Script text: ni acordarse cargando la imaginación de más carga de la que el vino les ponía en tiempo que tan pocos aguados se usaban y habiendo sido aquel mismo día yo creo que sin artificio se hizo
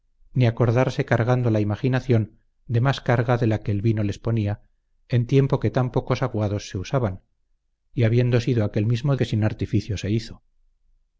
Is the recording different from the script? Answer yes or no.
yes